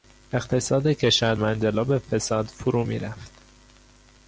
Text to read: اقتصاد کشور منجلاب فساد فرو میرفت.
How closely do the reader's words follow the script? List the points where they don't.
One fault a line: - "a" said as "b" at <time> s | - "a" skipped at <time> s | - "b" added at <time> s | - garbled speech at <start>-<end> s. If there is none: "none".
none